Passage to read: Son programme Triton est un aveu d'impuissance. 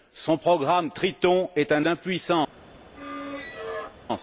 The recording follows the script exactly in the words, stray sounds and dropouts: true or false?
false